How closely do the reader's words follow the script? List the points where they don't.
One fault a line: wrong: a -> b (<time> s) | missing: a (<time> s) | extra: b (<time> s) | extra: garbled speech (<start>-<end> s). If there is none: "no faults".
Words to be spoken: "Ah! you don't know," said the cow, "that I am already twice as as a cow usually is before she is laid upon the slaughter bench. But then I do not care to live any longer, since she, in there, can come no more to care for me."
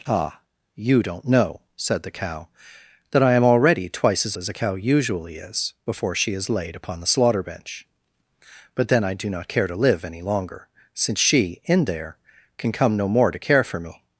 no faults